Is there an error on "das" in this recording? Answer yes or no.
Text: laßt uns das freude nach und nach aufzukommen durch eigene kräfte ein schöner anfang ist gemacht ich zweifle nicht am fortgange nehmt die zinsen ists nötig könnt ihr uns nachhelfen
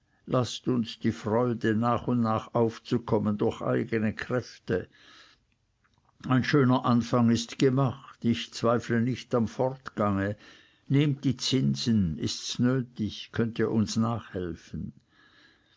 yes